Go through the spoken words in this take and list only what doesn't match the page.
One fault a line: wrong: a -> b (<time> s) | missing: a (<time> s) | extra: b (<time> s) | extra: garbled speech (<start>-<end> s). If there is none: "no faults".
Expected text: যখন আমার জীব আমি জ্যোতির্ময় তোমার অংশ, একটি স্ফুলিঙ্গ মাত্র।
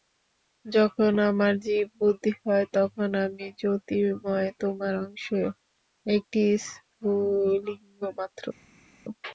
extra: বুদ্ধি হয় তখন (2.0 s)